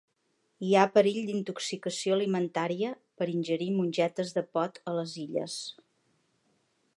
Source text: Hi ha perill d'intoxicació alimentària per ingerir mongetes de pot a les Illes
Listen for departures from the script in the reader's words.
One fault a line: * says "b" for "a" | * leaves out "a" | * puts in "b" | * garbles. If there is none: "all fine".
all fine